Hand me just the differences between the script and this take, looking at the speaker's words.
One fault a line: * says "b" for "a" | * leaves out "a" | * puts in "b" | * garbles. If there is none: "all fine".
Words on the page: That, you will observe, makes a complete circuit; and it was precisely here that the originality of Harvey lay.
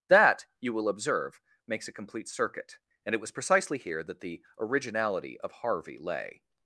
all fine